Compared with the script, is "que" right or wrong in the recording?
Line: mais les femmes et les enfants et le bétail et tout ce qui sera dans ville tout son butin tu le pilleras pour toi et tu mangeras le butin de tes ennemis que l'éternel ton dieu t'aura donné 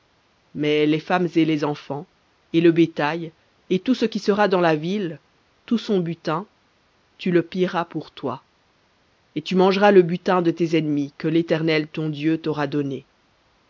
right